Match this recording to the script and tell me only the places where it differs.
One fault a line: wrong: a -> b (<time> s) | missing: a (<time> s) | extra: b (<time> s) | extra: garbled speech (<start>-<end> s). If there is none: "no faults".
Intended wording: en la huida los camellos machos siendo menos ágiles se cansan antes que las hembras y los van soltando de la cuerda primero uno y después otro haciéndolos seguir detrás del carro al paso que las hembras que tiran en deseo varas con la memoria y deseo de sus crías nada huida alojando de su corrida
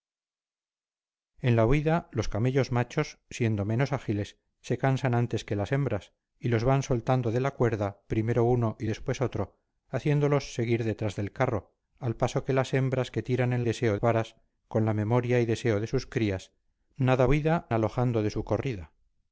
no faults